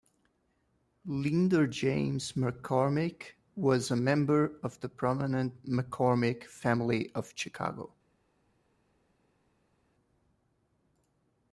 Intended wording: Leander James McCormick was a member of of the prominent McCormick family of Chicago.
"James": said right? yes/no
yes